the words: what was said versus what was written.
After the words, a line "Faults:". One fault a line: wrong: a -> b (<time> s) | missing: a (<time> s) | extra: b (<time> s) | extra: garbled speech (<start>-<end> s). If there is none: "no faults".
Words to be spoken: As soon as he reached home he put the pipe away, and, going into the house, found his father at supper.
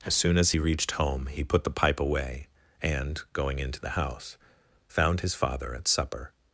As soon as he reached home he put the pipe away, and, going into the house, found his father at supper.
Faults:
no faults